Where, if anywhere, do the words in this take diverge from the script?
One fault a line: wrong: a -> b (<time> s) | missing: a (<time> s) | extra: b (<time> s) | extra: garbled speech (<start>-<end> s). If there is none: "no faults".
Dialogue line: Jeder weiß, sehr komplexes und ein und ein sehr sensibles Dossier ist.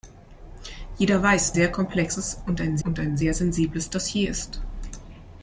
no faults